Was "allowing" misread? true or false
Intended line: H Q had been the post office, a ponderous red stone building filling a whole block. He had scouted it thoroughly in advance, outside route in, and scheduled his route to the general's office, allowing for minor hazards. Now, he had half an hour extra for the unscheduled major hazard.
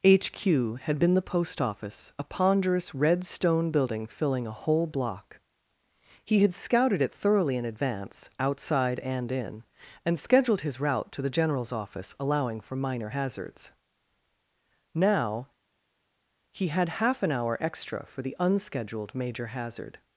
false